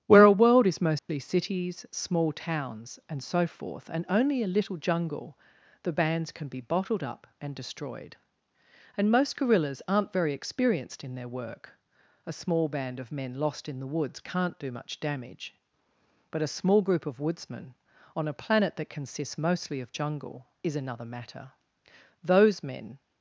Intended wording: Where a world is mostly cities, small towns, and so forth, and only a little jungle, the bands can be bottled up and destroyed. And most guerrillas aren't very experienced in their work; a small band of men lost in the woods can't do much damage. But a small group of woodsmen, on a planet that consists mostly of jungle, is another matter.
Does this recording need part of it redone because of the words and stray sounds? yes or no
yes